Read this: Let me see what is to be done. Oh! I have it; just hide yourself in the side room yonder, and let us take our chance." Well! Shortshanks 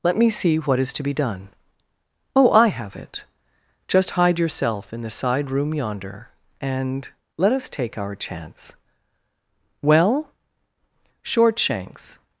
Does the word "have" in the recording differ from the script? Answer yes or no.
no